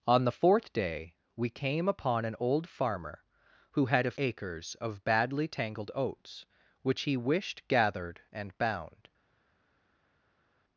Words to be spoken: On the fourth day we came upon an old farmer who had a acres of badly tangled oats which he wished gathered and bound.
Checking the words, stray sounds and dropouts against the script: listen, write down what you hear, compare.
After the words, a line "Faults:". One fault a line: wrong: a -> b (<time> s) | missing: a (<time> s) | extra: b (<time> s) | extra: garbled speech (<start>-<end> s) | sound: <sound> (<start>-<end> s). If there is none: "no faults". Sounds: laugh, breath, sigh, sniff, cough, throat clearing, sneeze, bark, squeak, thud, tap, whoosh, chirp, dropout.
On the fourth day we came upon an old farmer who had a acres of badly tangled oats which he wished gathered and bound.
Faults:
no faults